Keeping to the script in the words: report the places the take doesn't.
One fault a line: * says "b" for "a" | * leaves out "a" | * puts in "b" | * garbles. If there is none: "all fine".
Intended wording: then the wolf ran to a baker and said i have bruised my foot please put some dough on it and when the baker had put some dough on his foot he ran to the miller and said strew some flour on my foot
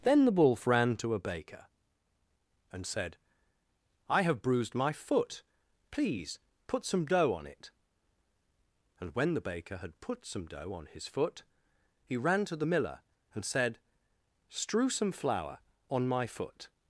all fine